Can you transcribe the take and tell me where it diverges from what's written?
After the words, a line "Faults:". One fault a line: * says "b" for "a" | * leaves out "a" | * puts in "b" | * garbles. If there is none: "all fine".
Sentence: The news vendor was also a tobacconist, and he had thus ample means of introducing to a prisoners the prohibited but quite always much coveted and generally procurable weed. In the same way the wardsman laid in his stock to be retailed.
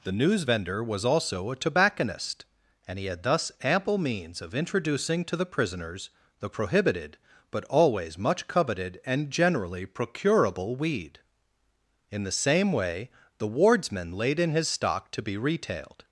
The news vendor was also a tobacconist, and he had thus ample means of introducing to the prisoners the prohibited but always much coveted and generally procurable weed. In the same way the wardsman laid in his stock to be retailed.
Faults:
* says "the" for "a"
* leaves out "quite"